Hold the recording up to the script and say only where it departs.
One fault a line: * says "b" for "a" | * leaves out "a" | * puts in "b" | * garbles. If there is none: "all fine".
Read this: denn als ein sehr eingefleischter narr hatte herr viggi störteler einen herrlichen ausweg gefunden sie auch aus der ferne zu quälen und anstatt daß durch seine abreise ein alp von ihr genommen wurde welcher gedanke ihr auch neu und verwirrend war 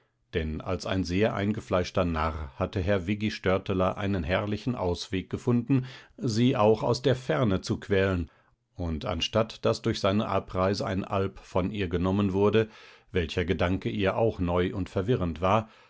all fine